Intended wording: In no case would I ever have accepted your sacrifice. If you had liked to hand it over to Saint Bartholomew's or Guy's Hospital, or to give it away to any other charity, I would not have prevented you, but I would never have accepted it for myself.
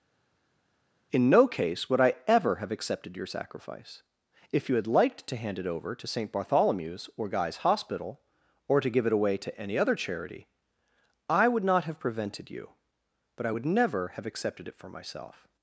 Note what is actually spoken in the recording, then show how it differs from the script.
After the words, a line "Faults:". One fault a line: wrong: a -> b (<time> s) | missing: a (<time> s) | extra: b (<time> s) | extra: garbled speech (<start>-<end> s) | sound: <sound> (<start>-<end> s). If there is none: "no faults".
In no case would I ever have accepted your sacrifice. If you had liked to hand it over to Saint Bartholomew's or Guy's Hospital, or to give it away to any other charity, I would not have prevented you, but I would never have accepted it for myself.
Faults:
no faults